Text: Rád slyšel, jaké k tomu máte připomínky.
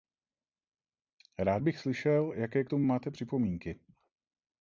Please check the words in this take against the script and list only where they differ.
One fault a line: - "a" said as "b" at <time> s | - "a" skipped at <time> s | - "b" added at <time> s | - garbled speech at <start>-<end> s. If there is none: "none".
- "bych" added at 1.6 s